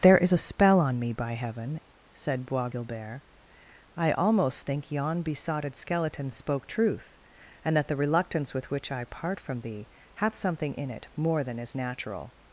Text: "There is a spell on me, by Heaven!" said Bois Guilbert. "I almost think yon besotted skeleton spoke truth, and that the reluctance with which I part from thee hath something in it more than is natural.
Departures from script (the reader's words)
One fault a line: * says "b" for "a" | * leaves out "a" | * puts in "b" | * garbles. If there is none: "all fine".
all fine